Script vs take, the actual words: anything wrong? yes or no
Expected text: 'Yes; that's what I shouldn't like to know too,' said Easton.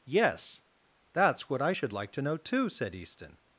yes